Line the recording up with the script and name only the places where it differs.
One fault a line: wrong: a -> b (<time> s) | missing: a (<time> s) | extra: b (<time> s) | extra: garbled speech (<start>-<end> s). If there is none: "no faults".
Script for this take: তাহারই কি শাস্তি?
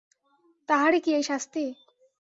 extra: এই (1.1 s)